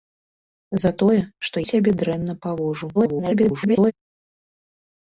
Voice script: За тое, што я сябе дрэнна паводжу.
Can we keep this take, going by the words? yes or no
no